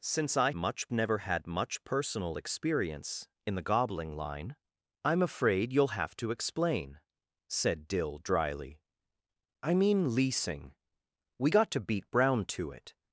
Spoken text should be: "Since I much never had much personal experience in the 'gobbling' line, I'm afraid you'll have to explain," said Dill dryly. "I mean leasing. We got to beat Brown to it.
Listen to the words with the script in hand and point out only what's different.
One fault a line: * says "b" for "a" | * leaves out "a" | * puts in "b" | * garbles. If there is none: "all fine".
all fine